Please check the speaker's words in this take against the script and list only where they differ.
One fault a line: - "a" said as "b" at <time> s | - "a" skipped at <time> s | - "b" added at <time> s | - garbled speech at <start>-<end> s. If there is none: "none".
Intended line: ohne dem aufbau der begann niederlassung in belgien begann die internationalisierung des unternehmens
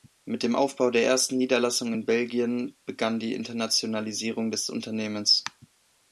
- "ohne" said as "mit" at 0.2 s
- "begann" said as "ersten" at 1.0 s